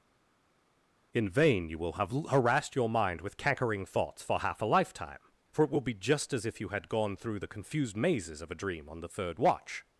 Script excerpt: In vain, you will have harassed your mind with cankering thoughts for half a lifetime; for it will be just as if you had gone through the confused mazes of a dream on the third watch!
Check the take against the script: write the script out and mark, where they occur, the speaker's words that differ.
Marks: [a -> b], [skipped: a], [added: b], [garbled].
In vain, you will have harassed your mind with cankering thoughts for half a lifetime; for it will be just as if you had gone through the confused mazes of a dream on the third watch!